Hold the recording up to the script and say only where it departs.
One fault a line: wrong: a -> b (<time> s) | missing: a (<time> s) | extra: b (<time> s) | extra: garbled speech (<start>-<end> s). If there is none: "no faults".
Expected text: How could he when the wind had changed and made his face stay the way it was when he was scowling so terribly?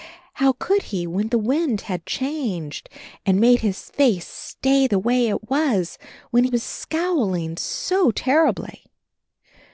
missing: he (6.5 s)